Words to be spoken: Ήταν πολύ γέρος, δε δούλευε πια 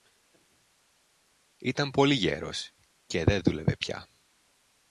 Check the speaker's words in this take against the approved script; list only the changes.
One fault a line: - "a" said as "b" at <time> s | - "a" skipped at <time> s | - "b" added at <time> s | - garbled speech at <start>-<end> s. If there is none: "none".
- "και" added at 3.0 s